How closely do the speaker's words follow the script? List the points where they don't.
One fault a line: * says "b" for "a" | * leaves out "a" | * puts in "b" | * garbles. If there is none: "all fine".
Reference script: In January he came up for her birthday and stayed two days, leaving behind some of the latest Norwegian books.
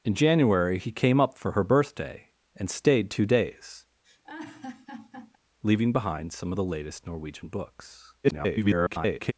* garbles